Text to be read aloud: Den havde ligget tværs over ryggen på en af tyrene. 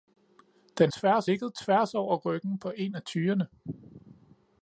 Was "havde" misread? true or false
true